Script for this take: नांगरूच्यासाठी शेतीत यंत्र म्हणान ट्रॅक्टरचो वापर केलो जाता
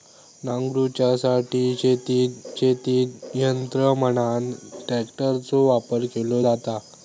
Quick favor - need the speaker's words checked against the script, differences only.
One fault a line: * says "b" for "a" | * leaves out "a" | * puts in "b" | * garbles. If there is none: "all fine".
* puts in "शेतीत"